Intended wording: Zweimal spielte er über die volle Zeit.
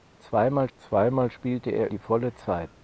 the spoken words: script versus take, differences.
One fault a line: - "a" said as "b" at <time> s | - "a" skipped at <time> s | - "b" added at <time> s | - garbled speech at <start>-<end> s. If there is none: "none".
- "zweimal" added at 0.8 s
- "über" skipped at 1.9 s